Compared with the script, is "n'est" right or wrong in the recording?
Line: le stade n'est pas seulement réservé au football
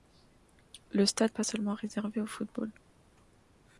wrong